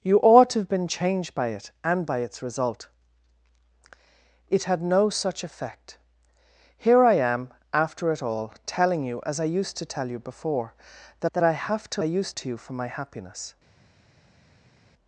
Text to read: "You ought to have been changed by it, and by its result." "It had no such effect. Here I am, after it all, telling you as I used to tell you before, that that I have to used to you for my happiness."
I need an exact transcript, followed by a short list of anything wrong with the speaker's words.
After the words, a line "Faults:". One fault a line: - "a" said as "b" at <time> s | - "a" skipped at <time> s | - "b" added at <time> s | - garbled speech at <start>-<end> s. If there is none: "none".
"You ought to have been changed by it, and by its result." "It had no such effect. Here I am, after it all, telling you as I used to tell you before, that that I have to used to you for my happiness."
Faults:
none